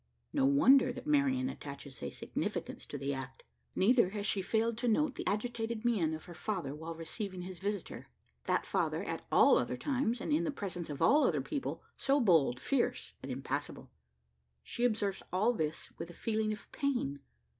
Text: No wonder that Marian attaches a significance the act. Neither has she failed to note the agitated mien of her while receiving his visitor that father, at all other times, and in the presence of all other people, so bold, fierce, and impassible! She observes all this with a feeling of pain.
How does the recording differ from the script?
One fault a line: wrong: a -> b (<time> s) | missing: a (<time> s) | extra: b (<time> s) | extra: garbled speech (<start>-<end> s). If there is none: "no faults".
extra: to (2.9 s)
extra: father (6.3 s)